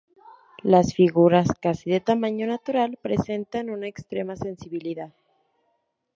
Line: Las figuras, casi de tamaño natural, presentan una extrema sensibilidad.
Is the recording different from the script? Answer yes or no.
no